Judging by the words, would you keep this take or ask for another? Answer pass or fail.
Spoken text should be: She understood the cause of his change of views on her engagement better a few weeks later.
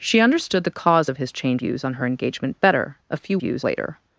fail